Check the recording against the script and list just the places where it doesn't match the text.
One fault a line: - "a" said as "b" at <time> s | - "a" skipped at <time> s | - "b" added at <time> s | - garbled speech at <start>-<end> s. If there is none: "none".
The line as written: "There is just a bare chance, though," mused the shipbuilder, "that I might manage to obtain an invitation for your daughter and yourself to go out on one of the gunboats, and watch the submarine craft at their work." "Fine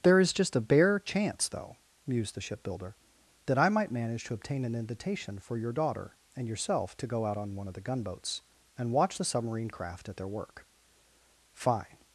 none